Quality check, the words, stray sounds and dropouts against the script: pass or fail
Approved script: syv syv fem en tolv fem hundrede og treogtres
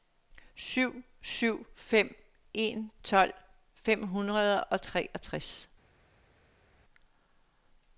pass